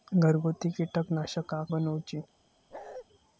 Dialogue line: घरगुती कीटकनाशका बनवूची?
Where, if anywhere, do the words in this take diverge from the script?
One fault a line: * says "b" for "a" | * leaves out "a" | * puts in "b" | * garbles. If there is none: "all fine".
all fine